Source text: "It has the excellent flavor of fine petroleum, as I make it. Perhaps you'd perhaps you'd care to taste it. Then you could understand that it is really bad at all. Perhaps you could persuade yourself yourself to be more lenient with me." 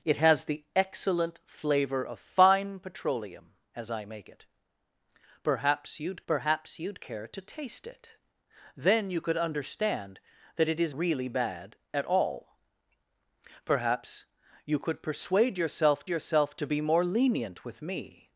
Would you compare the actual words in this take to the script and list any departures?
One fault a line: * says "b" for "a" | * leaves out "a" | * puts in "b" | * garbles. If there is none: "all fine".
all fine